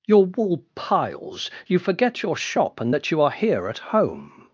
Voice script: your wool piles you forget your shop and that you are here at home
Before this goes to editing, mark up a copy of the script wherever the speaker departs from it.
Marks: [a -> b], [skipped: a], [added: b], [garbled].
your wool piles you forget your shop and that you are here at home